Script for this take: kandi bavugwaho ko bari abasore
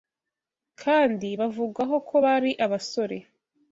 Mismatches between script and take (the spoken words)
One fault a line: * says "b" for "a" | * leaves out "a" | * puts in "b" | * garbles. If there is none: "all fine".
all fine